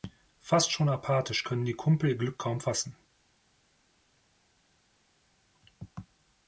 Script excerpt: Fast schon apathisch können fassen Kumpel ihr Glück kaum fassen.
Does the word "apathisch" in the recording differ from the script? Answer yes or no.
no